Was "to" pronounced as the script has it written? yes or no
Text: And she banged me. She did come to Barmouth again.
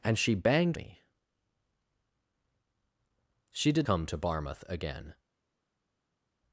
yes